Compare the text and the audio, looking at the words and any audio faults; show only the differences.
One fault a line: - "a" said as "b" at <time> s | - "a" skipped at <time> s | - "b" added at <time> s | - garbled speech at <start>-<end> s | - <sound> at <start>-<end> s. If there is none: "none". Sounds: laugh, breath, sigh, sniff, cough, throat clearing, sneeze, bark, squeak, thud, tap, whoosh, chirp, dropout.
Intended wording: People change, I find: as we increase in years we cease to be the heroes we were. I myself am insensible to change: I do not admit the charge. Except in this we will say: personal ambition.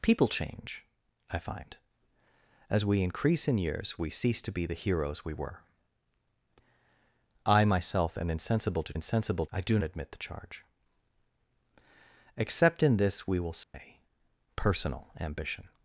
- "change" said as "insensible" at 8.9 s
- "not" skipped at 9.8 s
- dropout at 13.6-13.7 s